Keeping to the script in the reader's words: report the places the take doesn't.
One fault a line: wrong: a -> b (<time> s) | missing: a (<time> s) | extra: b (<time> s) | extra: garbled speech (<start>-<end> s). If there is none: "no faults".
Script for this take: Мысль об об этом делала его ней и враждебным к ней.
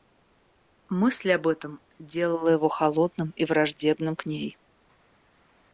missing: об (1.5 s)
wrong: ней -> холодным (2.7 s)